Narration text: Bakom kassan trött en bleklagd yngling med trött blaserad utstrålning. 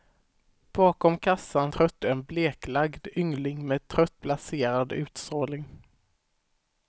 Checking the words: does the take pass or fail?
pass